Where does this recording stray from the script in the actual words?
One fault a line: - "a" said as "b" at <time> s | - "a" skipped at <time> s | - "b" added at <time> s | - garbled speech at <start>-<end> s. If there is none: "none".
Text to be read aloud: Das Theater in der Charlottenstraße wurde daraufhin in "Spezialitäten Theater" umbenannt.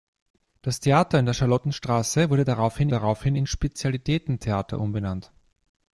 - "daraufhin" added at 2.9 s